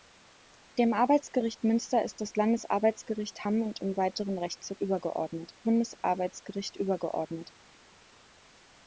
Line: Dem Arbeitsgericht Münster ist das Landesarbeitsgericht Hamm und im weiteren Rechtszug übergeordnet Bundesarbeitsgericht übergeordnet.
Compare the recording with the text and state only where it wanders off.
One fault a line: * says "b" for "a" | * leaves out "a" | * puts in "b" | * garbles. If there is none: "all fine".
all fine